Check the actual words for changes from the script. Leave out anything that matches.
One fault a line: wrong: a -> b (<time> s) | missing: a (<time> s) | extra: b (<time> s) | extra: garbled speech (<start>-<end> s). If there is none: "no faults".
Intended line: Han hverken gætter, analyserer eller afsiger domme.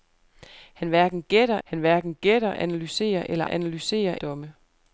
extra: han hverken gætter (1.6 s)
wrong: afsiger -> analyserer (3.4 s)